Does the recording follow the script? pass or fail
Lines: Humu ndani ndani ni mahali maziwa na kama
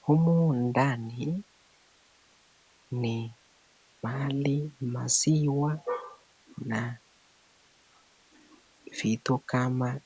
fail